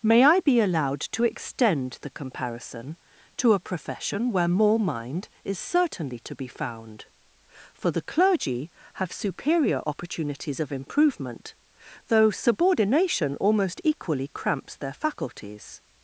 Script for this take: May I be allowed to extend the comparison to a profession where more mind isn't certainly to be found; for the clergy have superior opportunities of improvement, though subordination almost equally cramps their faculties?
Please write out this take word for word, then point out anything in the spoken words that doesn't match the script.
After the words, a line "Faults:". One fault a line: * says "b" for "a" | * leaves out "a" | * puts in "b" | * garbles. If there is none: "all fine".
May I be allowed to extend the comparison to a profession where more mind is certainly to be found; for the clergy have superior opportunities of improvement, though subordination almost equally cramps their faculties?
Faults:
* says "is" for "isn't"